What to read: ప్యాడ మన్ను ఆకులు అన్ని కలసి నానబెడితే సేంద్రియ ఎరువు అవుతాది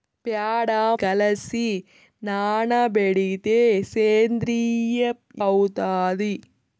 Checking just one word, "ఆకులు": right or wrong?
wrong